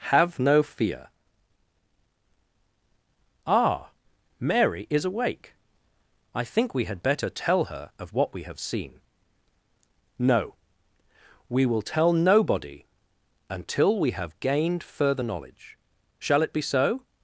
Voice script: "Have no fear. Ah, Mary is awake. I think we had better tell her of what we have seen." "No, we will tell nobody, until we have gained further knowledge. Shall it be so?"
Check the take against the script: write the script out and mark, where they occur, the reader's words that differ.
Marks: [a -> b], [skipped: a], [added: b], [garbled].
"Have no fear. Ah, Mary is awake. I think we had better tell her of what we have seen." "No, we will tell nobody, until we have gained further knowledge. Shall it be so?"